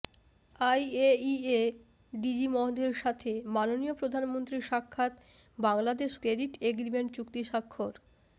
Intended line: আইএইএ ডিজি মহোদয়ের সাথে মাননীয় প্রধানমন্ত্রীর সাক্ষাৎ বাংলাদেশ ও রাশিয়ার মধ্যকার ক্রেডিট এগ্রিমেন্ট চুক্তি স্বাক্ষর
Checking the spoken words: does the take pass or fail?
fail